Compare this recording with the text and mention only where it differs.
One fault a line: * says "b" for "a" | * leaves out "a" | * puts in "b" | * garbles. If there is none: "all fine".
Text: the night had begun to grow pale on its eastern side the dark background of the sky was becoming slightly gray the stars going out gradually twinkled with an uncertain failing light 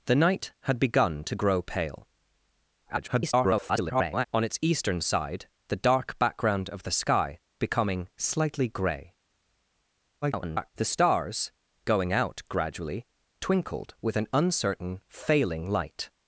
* garbles
* leaves out "was"
* garbles